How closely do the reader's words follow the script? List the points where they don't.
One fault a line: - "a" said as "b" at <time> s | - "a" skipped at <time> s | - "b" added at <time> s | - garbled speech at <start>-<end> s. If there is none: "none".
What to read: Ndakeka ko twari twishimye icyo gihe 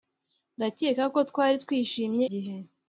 - "icyo" skipped at 2.2 s